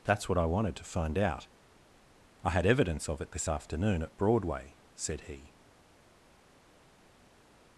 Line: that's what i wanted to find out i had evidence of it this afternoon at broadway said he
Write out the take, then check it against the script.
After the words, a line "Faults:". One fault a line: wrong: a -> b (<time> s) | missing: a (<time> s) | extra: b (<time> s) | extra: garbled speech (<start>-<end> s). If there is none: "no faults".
that's what i wanted to find out i had evidence of it this afternoon at broadway said he
Faults:
no faults